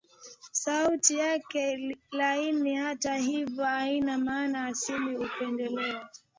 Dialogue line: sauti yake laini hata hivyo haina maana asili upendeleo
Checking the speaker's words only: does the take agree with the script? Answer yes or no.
yes